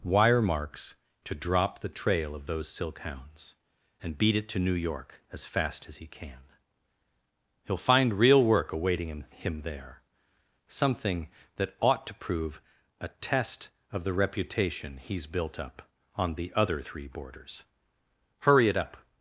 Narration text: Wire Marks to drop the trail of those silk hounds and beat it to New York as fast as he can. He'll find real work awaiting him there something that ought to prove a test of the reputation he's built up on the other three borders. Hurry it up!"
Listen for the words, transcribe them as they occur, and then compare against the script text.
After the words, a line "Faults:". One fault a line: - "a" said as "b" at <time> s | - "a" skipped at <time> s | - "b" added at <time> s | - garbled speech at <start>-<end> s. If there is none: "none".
Wire Marks to drop the trail of those silk hounds and beat it to New York as fast as he can. He'll find real work awaiting him him there something that ought to prove a test of the reputation he's built up on the other three borders. Hurry it up!"
Faults:
- "him" added at 9.3 s